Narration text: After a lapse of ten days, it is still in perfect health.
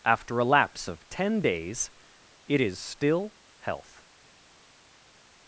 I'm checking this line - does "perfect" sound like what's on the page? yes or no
no